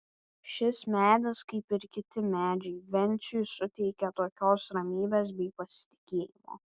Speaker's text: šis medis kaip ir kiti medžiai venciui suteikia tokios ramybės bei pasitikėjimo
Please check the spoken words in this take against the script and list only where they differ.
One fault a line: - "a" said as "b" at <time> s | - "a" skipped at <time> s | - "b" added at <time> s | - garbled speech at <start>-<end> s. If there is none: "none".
none